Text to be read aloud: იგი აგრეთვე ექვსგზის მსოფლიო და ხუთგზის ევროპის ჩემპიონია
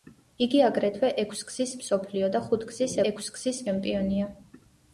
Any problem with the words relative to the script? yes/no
yes